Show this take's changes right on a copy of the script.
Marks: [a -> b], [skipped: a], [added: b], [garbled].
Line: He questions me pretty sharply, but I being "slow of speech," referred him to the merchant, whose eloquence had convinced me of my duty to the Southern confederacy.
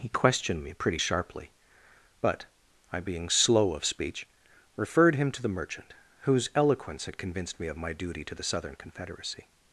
He [questions -> questioned] me pretty sharply, but I being "slow of speech," referred him to the merchant, whose eloquence had convinced me of my duty to the Southern confederacy.